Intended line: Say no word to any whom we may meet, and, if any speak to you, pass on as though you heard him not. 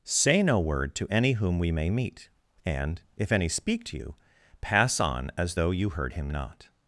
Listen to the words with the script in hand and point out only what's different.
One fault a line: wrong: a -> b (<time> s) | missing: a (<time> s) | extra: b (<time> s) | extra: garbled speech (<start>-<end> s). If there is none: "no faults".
no faults